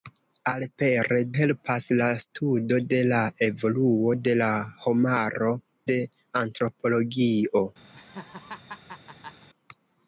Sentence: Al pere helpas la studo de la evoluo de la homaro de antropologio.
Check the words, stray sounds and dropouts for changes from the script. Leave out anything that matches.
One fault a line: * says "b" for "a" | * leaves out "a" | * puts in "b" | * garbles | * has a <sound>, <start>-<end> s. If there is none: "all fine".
* has a laugh, 7.9-9.5 s